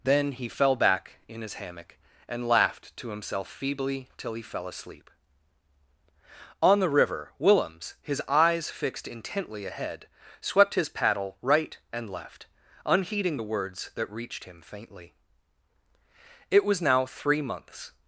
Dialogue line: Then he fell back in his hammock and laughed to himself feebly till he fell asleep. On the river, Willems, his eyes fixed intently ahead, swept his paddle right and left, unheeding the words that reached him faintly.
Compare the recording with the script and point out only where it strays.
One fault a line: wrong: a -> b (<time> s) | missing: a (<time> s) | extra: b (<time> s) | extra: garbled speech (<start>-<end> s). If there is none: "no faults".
extra: It was now three months (16.5 s)